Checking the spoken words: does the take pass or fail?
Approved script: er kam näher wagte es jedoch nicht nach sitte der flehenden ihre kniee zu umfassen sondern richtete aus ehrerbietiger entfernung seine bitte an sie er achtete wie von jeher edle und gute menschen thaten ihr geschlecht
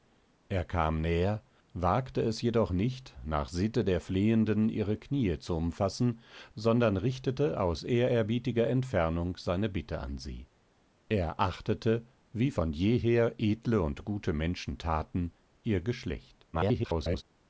fail